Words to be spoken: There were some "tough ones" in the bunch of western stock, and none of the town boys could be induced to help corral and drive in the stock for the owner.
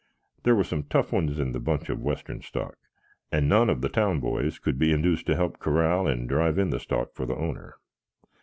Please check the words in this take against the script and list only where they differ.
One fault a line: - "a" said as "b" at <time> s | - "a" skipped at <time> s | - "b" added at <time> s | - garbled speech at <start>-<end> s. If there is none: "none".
none